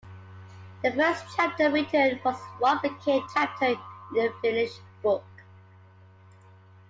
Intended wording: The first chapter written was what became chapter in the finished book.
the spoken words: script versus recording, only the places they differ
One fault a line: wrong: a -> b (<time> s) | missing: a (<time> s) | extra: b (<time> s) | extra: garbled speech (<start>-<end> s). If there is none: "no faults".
no faults